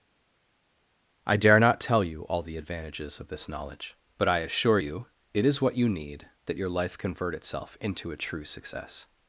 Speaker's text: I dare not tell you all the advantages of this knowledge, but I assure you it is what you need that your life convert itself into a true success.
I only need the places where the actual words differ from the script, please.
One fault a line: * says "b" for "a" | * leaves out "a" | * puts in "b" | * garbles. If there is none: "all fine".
all fine